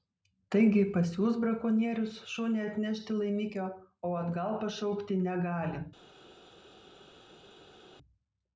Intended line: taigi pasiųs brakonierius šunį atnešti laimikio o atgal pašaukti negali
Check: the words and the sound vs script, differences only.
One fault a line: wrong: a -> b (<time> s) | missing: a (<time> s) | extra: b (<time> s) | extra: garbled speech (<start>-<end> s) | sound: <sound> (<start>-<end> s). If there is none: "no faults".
no faults